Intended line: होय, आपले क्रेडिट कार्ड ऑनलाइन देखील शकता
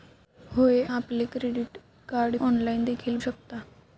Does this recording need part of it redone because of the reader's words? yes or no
no